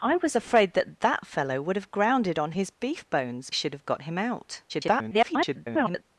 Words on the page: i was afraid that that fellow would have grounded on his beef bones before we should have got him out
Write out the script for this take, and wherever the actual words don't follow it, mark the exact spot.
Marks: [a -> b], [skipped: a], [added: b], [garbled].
i was afraid that that fellow would have grounded on his beef bones [skipped: before we] should have got him out [garbled]